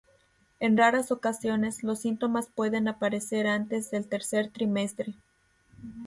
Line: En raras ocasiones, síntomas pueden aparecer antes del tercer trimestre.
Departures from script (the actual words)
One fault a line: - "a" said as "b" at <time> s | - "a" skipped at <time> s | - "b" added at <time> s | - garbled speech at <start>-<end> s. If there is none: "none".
- "los" added at 1.8 s